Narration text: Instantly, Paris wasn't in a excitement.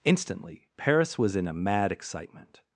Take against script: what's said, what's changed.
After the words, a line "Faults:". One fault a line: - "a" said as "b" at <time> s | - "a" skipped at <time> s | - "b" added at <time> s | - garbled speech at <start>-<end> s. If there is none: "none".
Instantly, Paris was in a mad excitement.
Faults:
- "wasn't" said as "was" at 1.2 s
- "mad" added at 1.5 s